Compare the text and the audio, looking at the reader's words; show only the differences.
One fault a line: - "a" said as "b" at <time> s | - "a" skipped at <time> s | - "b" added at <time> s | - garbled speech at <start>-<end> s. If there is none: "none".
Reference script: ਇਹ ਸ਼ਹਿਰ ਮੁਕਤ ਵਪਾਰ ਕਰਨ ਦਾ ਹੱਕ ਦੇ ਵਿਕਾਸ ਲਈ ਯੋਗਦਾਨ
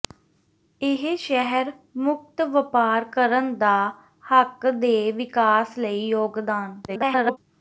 - garbled speech at 6.9-7.4 s